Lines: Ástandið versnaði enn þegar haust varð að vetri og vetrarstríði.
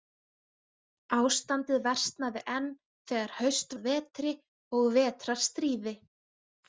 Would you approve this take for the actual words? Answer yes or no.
no